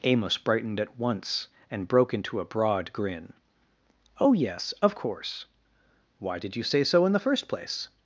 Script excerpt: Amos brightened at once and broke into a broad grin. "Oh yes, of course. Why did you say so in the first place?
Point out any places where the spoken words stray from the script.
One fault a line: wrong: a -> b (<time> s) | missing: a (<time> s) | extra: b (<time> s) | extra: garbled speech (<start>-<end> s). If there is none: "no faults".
no faults